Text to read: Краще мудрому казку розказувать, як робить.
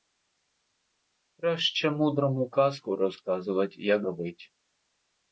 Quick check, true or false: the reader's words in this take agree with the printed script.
true